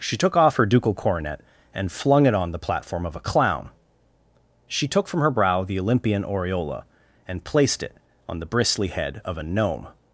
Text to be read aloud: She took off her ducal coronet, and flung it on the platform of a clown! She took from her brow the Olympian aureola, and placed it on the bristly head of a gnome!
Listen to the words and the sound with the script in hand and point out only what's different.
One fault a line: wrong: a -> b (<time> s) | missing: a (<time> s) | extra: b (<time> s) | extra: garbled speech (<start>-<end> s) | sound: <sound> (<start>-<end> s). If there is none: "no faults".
no faults